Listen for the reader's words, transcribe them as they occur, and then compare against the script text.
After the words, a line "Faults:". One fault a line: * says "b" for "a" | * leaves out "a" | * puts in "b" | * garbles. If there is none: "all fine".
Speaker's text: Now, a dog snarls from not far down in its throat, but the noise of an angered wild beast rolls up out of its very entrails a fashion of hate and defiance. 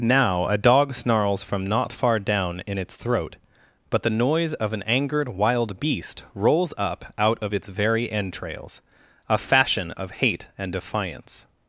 Now, a dog snarls from not far down in its throat, but the noise of an angered wild beast rolls up out of its very entrails a fashion of hate and defiance.
Faults:
all fine